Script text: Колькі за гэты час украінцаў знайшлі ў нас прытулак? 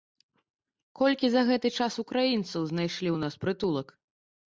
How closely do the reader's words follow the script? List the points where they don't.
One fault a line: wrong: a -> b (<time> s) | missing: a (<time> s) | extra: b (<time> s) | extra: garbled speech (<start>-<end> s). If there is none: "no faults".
no faults